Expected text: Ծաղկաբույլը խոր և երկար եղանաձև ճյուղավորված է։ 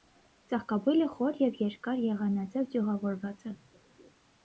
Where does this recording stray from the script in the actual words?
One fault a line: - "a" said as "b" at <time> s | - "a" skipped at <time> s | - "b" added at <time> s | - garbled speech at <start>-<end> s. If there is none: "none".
none